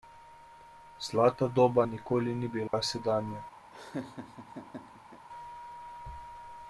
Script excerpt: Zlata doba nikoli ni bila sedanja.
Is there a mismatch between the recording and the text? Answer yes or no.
no